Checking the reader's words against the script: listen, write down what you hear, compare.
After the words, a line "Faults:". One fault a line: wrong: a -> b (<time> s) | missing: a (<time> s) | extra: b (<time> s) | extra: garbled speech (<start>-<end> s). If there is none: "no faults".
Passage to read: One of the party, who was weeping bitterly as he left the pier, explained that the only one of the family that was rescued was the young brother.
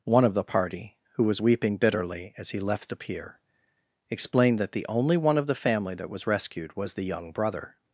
One of the party, who was weeping bitterly as he left the pier, explained that the only one of the family that was rescued was the young brother.
Faults:
no faults